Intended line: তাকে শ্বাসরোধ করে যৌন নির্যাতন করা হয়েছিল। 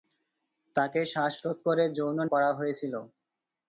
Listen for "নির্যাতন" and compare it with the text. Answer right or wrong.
wrong